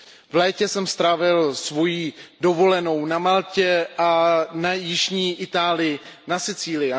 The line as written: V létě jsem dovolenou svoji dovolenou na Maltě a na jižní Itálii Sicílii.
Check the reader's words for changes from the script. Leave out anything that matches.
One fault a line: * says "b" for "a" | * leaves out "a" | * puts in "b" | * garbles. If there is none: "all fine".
* says "strávil" for "dovolenou"
* says "v" for "na"
* puts in "na"